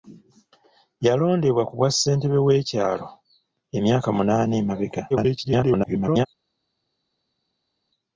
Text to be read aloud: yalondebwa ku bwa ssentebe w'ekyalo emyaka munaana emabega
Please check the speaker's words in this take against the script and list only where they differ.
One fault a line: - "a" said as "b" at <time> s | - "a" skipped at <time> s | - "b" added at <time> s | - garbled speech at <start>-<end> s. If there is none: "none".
- garbled speech at 5.1-6.3 s